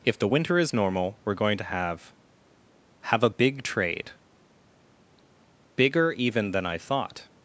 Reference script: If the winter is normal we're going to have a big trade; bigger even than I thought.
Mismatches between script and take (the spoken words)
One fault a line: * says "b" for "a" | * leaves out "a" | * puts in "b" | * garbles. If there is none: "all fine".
* puts in "have"